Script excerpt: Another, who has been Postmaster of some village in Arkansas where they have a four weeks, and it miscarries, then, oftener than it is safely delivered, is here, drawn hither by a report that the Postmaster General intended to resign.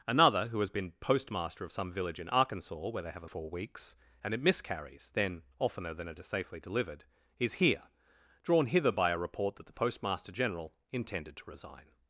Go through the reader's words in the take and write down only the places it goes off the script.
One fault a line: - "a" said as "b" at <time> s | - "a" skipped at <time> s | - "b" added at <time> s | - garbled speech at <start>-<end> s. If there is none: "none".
none